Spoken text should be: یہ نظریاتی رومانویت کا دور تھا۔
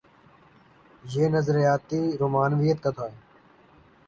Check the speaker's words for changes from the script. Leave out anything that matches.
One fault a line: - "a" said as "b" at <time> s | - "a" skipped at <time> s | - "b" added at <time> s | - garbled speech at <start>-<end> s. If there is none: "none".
- "دور" skipped at 2.9 s